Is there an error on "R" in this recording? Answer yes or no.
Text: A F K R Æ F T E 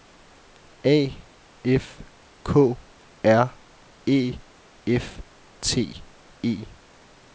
no